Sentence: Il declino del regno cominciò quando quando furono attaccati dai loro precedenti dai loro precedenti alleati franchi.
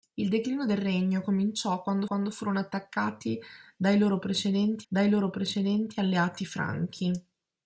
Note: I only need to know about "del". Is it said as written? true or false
true